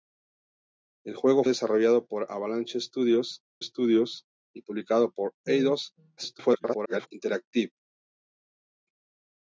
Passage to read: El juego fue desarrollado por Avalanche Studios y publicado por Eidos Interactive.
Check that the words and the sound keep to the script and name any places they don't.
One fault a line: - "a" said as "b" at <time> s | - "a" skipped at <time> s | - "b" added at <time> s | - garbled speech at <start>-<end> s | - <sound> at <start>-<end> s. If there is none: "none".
- "fue" skipped at 1.4 s
- "Studios" added at 3.6 s
- garbled speech at 6.2-7.1 s